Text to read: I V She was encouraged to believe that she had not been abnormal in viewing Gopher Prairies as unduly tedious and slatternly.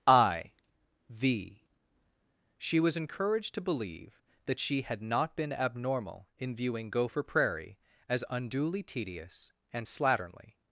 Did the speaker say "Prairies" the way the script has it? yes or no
no